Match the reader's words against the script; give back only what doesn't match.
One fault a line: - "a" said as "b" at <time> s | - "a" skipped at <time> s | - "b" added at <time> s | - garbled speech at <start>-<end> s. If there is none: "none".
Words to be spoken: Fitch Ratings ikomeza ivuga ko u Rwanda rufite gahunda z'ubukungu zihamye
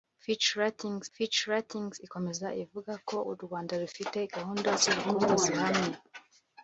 - "fitch Ratings" added at 1.1 s